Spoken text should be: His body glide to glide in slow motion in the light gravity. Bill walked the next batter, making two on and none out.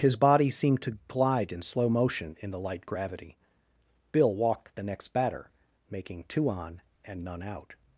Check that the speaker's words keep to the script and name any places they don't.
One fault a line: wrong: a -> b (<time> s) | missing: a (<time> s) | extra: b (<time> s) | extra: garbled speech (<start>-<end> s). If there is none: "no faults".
wrong: glide -> seemed (0.5 s)